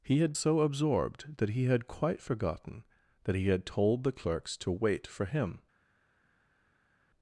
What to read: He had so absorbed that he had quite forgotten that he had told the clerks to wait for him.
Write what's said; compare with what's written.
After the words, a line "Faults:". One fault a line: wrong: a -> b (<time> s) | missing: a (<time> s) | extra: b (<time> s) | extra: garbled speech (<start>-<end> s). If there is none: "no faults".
He had so absorbed that he had quite forgotten that he had told the clerks to wait for him.
Faults:
no faults